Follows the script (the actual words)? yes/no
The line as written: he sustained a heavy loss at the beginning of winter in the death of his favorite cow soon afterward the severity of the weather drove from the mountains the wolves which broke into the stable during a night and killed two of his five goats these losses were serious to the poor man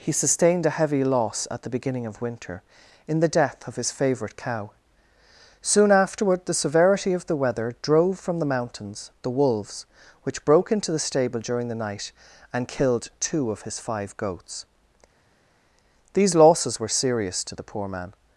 no